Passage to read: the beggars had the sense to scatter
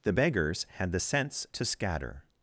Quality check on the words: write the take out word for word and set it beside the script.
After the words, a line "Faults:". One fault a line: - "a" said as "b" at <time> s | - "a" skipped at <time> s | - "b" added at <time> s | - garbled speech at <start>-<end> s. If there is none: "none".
the beggars had the sense to scatter
Faults:
none